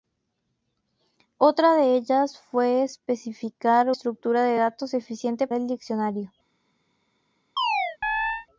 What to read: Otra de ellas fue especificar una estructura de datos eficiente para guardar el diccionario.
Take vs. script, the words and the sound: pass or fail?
fail